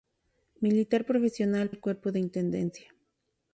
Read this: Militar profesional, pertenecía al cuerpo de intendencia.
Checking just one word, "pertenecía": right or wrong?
wrong